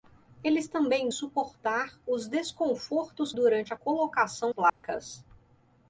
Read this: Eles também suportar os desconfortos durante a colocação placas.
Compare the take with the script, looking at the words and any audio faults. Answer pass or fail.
fail